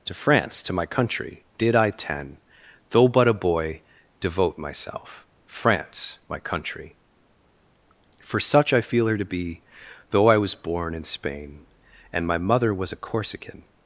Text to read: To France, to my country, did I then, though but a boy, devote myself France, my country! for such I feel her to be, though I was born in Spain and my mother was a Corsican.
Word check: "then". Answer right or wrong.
wrong